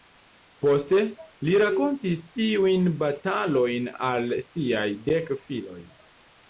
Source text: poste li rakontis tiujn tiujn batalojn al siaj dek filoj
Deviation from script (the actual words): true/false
true